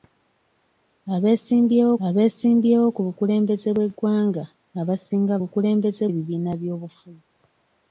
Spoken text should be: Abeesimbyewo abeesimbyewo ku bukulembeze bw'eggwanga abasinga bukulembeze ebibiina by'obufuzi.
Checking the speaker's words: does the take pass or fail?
pass